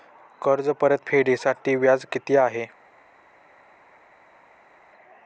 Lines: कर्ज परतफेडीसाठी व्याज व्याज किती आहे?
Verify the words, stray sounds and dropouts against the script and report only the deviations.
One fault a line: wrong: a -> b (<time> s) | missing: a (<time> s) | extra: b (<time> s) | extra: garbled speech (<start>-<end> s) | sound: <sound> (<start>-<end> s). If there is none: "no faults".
missing: व्याज (2.0 s)